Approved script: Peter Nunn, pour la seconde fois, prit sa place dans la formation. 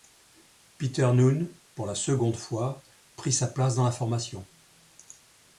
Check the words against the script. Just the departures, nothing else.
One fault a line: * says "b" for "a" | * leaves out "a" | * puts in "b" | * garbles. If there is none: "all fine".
all fine